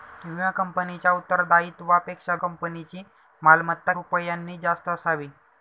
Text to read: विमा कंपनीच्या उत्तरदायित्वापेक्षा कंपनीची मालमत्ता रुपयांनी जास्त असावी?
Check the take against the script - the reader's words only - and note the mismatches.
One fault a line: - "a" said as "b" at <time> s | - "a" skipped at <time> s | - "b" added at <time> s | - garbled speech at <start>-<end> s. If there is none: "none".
none